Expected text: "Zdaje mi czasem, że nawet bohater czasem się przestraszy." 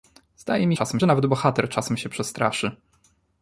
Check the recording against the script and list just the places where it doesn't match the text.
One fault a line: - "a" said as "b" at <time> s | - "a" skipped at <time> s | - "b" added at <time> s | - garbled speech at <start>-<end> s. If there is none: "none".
none